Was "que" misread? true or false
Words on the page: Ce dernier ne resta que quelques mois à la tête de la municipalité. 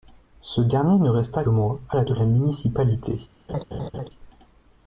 true